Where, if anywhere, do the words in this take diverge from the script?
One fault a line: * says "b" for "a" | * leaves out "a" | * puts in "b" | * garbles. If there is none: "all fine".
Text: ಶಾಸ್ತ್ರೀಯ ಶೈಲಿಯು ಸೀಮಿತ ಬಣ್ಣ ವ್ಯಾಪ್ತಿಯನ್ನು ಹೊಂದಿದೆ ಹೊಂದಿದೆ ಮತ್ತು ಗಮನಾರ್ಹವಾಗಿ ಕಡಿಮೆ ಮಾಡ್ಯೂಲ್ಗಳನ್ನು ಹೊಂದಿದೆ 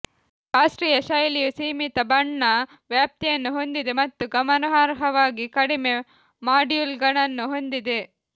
* leaves out "ಹೊಂದಿದೆ"